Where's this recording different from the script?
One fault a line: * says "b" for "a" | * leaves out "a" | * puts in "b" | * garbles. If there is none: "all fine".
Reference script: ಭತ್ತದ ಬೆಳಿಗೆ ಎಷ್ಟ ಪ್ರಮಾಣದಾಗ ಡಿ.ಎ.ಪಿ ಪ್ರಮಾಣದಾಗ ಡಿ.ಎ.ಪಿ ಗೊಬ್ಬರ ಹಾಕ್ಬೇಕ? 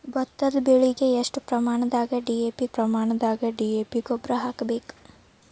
all fine